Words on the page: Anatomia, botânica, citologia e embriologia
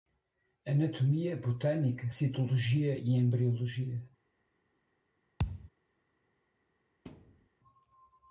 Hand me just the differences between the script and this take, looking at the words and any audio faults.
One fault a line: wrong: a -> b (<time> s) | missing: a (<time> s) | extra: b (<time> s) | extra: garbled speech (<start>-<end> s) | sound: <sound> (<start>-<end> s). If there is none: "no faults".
sound: thud (5.4-5.7 s)
sound: thud (7.1-7.5 s)